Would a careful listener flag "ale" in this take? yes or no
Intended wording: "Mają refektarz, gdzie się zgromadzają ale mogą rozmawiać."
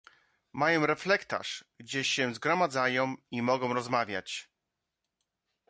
yes